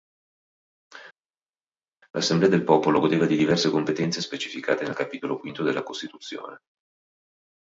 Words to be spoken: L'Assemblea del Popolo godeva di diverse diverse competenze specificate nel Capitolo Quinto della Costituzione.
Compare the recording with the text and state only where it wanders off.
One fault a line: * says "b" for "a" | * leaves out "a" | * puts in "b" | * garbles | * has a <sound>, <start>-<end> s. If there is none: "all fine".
* leaves out "diverse"